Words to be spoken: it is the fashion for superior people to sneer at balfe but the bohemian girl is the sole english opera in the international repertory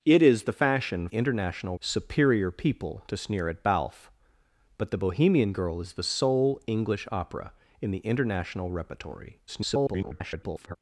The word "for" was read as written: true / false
false